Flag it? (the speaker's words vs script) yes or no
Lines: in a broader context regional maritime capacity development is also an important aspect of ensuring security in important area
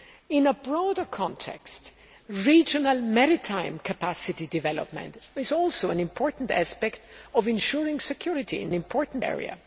no